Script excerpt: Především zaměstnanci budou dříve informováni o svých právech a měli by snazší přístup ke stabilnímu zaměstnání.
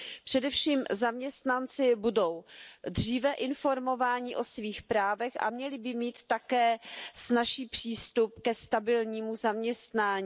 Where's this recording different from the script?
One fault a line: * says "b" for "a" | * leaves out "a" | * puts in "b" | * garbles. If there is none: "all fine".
* puts in "mít také"